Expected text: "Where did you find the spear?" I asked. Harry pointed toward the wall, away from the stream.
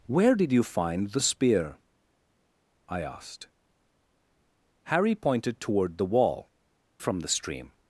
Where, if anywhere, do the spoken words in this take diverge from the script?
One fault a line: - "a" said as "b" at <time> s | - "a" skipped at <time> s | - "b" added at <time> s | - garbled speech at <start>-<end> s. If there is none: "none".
- "away" skipped at 6.5 s